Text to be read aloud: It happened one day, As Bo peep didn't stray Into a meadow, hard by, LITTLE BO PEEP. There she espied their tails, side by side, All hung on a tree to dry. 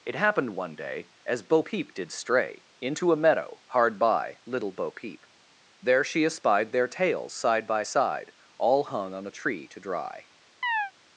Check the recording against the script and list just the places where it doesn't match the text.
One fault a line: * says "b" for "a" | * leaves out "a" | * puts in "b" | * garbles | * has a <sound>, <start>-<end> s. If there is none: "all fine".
* says "did" for "didn't"
* has a chirp, 10.6-10.9 s